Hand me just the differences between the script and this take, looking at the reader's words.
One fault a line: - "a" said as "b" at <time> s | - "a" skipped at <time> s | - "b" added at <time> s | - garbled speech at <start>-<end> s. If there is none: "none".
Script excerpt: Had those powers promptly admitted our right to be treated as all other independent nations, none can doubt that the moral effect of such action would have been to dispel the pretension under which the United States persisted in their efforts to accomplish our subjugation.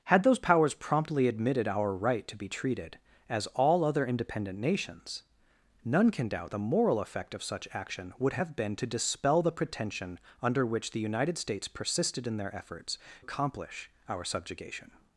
- "that" skipped at 6.5 s
- "to" skipped at 13.0 s